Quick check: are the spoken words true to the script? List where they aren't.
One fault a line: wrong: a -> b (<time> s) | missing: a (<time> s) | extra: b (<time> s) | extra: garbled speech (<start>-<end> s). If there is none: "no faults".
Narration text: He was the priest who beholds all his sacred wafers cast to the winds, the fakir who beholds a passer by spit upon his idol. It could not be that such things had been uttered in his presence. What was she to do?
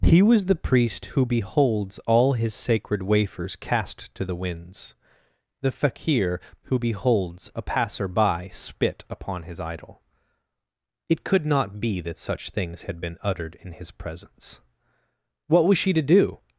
no faults